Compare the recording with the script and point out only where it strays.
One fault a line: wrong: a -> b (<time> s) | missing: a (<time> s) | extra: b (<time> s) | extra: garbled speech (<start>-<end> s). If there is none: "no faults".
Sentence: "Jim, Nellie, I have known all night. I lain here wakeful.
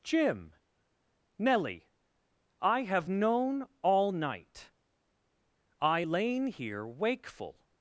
no faults